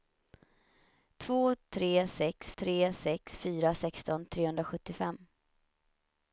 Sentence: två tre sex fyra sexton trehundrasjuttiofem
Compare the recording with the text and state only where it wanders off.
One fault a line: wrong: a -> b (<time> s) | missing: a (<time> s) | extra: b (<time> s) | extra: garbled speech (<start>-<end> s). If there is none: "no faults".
extra: tre sex (2.5 s)